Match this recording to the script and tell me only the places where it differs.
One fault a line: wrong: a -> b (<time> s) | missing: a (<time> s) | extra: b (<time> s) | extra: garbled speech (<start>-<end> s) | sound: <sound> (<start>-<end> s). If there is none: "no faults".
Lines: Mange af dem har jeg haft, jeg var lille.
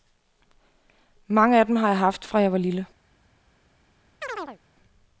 extra: fra (2.2 s)
sound: chirp (4.2-4.6 s)